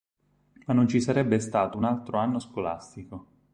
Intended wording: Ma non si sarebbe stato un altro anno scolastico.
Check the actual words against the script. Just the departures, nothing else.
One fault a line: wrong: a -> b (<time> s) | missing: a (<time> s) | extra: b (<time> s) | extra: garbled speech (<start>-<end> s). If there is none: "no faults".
wrong: si -> ci (0.9 s)